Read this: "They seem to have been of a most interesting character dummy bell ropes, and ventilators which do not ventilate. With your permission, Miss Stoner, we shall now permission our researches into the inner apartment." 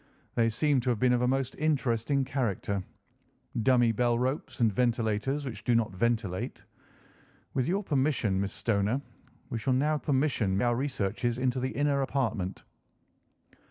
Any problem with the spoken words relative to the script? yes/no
no